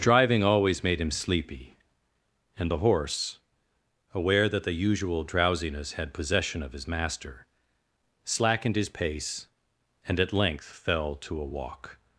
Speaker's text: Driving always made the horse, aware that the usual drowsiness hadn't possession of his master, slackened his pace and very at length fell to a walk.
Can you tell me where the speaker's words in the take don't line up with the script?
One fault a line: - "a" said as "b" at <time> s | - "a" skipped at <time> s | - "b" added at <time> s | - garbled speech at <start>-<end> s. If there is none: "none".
- "him sleepy and" added at 1.0 s
- "hadn't" said as "had" at 5.9 s
- "very" skipped at 10.2 s